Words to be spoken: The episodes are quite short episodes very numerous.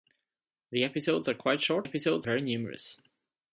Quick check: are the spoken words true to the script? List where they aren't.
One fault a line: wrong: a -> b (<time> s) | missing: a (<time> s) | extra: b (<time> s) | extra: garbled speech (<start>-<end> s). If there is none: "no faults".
no faults